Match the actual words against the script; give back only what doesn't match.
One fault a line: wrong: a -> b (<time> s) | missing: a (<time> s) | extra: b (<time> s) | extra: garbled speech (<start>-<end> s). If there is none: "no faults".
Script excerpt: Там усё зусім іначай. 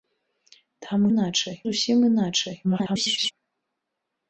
wrong: усё -> іначай (1.1 s)
extra: garbled speech (2.6-3.3 s)